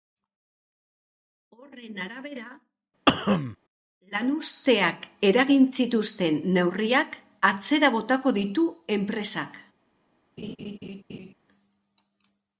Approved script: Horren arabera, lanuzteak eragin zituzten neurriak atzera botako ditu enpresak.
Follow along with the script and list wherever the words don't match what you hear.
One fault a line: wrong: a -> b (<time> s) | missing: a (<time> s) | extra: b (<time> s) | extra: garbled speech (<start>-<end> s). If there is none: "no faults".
no faults